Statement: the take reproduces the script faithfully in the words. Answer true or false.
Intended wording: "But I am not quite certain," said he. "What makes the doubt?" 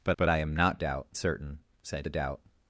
false